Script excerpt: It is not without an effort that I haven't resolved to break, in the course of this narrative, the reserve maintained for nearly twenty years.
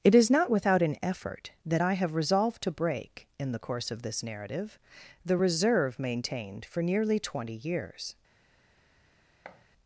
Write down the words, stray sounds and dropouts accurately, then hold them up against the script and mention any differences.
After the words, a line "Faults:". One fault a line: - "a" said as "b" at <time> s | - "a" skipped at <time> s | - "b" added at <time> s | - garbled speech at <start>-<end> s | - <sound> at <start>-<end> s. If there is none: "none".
It is not without an effort that I have resolved to break, in the course of this narrative, the reserve maintained for nearly twenty years.
Faults:
- "haven't" said as "have" at 1.9 s
- thud at 9.4-9.6 s